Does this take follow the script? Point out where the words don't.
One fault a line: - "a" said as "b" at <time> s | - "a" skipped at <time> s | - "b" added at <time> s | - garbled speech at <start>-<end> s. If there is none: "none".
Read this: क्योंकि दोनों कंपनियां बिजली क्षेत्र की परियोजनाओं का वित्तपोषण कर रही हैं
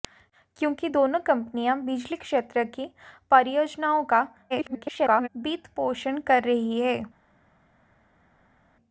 - garbled speech at 4.5-5.3 s